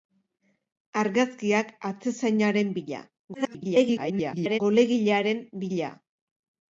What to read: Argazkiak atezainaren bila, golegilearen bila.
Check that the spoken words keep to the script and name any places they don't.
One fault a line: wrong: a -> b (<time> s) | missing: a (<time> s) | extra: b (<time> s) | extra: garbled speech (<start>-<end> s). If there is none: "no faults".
extra: garbled speech (3.3-4.6 s)